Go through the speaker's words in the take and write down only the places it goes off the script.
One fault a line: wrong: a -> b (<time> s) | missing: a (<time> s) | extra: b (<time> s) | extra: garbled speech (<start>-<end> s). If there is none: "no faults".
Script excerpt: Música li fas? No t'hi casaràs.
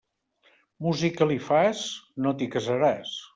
no faults